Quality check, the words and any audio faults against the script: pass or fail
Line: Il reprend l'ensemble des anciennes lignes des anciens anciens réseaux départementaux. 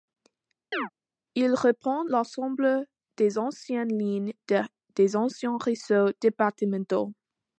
fail